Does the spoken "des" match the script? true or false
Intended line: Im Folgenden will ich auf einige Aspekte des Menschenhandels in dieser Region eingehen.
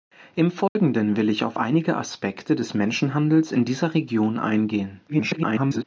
true